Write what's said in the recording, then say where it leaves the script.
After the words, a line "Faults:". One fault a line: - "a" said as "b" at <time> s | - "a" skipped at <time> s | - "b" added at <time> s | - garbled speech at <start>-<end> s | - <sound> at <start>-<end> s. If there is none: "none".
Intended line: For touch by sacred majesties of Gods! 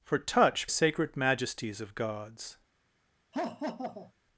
For touch sacred majesties of Gods!
Faults:
- "by" skipped at 0.7 s
- laugh at 3.3-4.1 s